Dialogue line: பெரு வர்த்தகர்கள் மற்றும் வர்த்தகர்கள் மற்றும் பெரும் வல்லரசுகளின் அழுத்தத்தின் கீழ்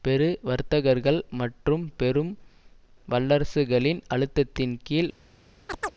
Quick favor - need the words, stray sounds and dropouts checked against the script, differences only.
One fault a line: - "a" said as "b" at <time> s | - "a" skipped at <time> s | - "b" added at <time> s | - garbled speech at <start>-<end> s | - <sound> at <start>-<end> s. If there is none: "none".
- "வர்த்தகர்கள் மற்றும்" skipped at 1.8 s
- chirp at 5.7-5.9 s